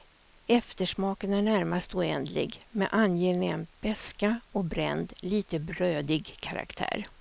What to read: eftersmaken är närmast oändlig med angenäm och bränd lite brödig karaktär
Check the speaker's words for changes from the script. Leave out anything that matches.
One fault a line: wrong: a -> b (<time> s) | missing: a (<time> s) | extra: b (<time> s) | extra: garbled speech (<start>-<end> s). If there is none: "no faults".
extra: beska (3.8 s)